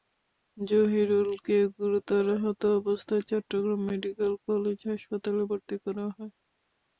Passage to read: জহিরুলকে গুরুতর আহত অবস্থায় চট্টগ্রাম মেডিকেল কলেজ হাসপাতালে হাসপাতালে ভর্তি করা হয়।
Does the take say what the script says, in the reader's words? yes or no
no